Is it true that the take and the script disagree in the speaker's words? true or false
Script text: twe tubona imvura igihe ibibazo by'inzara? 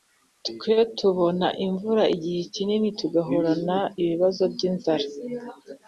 true